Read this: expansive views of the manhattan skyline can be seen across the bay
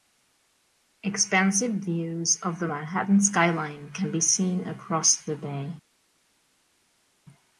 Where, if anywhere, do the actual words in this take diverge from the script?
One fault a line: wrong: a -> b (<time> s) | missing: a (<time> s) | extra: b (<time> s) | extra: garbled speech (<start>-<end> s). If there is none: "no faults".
no faults